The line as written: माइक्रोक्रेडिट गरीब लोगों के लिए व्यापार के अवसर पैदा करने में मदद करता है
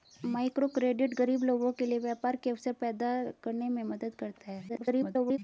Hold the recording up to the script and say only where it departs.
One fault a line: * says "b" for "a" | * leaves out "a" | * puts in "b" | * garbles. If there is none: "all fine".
* garbles